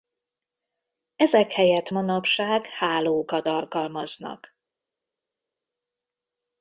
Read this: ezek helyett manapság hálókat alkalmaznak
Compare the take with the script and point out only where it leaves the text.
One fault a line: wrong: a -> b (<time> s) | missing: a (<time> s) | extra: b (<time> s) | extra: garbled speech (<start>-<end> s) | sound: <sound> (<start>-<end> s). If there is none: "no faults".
no faults